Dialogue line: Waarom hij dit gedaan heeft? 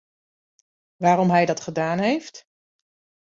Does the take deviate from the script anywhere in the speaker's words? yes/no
yes